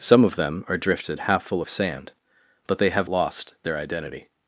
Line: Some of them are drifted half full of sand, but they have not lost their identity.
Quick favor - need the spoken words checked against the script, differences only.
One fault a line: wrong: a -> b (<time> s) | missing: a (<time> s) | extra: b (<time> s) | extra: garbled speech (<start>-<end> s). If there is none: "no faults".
missing: not (3.1 s)